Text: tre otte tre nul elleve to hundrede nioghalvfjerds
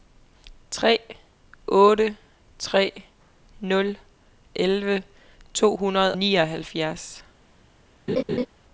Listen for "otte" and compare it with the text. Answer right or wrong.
right